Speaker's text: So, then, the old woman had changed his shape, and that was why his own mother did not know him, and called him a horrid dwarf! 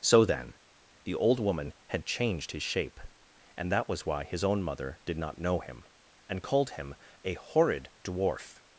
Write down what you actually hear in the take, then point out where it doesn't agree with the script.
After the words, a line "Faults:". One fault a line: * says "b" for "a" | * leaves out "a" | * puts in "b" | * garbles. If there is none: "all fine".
So, then, the old woman had changed his shape, and that was why his own mother did not know him, and called him a horrid dwarf!
Faults:
all fine